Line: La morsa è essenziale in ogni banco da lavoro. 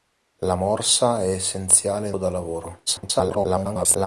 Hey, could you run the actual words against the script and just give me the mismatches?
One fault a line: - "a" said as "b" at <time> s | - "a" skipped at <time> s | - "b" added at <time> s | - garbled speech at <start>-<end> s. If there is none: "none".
- "ogni banco" skipped at 2.2 s
- garbled speech at 2.9-4.1 s